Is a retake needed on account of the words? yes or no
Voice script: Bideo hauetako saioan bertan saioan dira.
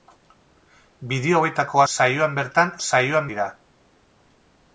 no